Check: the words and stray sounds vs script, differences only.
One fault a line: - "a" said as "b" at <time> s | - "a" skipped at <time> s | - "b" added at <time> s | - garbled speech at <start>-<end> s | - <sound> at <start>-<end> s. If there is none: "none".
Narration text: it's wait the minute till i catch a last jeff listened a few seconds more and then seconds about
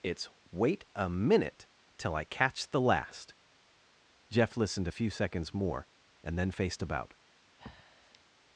- "the" said as "a" at 0.9 s
- "a" said as "the" at 2.7 s
- "seconds" said as "faced" at 6.5 s
- breath at 7.6-8.2 s